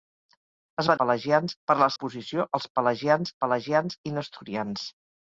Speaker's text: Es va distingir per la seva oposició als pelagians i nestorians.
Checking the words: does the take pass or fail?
fail